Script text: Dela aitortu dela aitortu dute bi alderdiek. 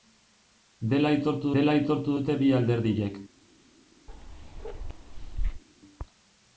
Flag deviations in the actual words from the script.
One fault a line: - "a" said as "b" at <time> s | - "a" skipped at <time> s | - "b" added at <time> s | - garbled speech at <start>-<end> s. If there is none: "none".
none